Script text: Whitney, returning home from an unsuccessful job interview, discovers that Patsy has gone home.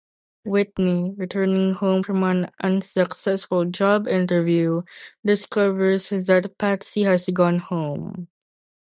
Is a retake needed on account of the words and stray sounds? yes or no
no